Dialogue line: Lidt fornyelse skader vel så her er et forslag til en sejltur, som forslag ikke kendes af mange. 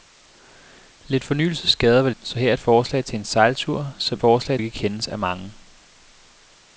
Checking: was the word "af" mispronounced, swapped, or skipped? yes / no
no